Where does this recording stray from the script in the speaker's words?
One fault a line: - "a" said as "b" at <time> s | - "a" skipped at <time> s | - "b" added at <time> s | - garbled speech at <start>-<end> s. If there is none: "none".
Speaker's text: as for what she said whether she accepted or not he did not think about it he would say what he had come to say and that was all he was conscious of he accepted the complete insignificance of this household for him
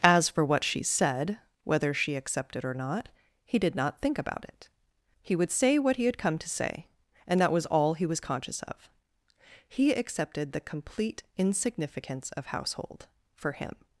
- "this" skipped at 12.5 s